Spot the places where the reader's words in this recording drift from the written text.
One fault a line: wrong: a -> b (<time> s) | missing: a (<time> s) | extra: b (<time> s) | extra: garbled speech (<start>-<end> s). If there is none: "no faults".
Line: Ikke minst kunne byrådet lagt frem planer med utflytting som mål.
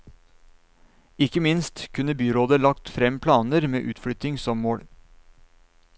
no faults